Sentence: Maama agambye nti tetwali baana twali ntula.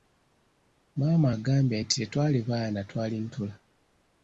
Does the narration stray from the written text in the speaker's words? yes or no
no